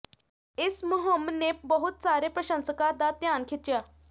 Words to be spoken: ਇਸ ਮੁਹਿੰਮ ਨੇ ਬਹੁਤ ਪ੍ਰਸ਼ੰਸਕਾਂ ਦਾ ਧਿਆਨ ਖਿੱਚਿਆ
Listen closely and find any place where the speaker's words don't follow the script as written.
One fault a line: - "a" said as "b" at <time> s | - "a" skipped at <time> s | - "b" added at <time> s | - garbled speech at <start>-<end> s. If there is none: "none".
- "ਸਾਰੇ" added at 2.0 s